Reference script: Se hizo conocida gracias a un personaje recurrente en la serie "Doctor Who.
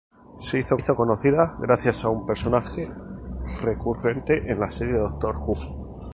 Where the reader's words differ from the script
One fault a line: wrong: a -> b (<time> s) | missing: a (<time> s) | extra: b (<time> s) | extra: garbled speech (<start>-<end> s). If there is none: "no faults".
extra: hizo (0.8 s)